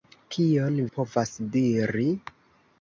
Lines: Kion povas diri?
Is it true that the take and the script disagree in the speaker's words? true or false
false